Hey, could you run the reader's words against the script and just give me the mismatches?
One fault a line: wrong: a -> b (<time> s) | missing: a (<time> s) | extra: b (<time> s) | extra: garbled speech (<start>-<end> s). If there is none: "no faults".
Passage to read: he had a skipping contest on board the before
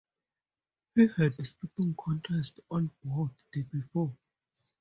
no faults